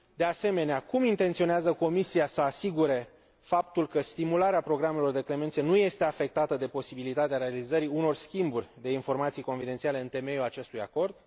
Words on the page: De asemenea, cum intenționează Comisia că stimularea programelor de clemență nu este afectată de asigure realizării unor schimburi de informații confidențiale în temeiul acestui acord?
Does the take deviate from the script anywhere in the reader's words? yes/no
yes